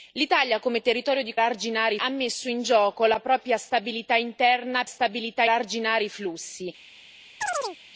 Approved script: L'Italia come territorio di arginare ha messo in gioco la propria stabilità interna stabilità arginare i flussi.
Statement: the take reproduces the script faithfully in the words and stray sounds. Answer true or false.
false